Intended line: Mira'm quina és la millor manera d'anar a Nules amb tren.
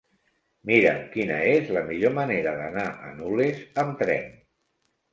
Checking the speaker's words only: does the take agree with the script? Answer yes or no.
yes